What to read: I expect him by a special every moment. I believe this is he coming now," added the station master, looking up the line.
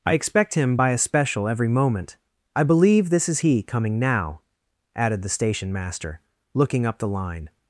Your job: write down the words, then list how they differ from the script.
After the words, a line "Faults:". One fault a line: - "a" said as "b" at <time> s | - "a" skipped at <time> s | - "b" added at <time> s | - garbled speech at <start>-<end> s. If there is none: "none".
I expect him by a special every moment. I believe this is he coming now," added the station master, looking up the line.
Faults:
none